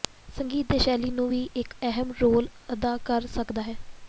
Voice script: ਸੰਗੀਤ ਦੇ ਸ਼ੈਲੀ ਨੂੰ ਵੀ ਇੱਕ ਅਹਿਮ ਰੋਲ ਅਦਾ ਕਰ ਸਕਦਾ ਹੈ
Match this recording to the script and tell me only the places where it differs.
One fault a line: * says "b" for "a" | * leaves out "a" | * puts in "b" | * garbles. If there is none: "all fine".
all fine